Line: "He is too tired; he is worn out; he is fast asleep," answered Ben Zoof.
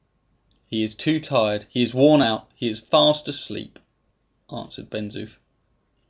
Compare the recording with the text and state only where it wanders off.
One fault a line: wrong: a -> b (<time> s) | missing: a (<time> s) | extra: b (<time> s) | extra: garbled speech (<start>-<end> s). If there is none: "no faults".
no faults